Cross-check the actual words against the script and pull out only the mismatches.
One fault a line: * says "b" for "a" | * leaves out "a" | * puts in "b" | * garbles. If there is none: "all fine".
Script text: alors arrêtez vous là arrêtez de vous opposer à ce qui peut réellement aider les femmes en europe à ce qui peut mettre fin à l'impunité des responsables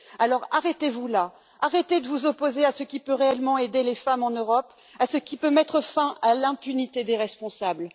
all fine